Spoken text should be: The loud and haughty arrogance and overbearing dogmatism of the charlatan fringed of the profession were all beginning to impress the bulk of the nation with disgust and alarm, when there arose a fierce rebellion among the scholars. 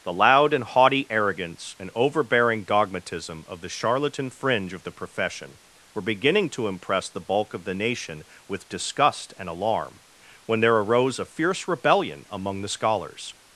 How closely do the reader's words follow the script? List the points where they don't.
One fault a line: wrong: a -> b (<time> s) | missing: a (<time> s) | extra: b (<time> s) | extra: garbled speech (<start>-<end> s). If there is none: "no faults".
wrong: fringed -> fringe (4.3 s)
missing: all (6.0 s)